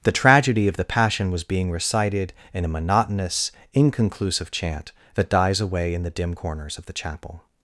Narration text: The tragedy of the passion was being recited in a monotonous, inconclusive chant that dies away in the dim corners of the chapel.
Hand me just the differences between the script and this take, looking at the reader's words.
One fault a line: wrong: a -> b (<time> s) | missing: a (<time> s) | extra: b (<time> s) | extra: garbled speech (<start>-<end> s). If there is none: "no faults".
no faults